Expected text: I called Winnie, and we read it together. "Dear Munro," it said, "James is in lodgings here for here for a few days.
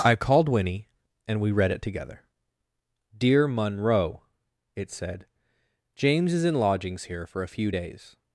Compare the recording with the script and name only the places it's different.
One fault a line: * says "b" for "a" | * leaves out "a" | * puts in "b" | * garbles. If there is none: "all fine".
* leaves out "here for"